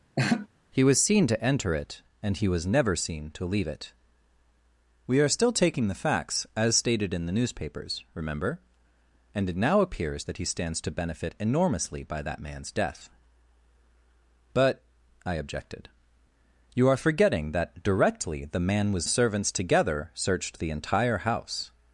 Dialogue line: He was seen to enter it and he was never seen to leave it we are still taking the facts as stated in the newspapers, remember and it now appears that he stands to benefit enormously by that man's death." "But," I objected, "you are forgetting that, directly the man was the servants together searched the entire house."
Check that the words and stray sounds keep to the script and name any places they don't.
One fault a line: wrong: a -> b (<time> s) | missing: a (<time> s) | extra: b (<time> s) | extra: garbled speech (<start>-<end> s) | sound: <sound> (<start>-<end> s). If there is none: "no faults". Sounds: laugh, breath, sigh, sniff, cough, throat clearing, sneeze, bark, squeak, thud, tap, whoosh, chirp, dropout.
sound: laugh (0.2-0.5 s)